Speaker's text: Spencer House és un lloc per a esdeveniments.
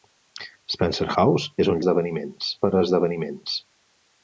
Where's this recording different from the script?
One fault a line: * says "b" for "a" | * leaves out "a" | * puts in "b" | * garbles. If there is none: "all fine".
* says "esdeveniments" for "lloc"